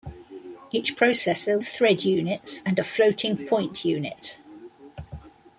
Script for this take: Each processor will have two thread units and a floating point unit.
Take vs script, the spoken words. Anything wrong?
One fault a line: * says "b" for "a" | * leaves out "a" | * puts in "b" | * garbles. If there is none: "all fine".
* leaves out "will have two"